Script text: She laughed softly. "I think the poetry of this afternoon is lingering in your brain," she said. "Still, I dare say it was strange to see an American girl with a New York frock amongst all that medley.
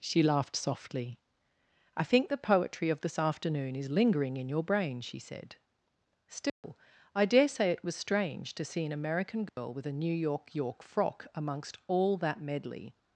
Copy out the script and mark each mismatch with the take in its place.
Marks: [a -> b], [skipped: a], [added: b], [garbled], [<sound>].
She laughed softly. "I think the poetry of this afternoon is lingering in your brain," she said. "Still, [dropout] I dare say it was strange to see an American girl [dropout] with a New York [added: York] frock amongst all that medley.